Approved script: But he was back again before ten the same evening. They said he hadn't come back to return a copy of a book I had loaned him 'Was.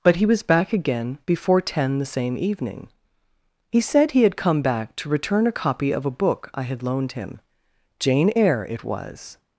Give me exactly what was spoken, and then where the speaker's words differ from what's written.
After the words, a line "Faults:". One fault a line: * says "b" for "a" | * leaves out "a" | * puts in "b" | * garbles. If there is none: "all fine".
But he was back again before ten the same evening. He said he had come back to return a copy of a book I had loaned him 'Jane Eyre' it was.
Faults:
* says "He" for "They"
* says "had" for "hadn't"
* puts in "Jane Eyre it"